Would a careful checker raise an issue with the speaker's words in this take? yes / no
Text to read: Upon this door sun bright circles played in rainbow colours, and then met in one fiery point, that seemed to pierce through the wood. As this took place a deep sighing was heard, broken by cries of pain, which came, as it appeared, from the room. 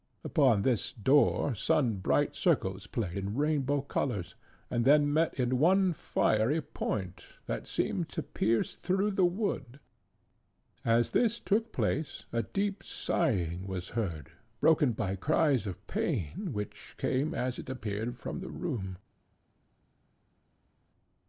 no